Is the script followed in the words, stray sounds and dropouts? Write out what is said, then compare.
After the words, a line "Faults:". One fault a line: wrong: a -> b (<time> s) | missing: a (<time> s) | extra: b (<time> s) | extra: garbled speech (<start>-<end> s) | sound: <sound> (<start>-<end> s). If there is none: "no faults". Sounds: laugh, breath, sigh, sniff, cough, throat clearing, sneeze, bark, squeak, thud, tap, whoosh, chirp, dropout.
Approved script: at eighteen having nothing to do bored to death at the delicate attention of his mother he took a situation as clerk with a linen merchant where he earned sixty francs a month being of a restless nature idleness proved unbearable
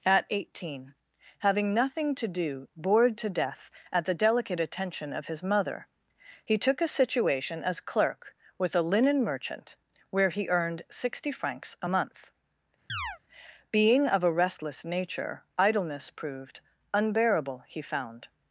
at eighteen having nothing to do bored to death at the delicate attention of his mother he took a situation as clerk with a linen merchant where he earned sixty francs a month being of a restless nature idleness proved unbearable he found
Faults:
sound: chirp (12.9-13.2 s)
extra: he found (17.7 s)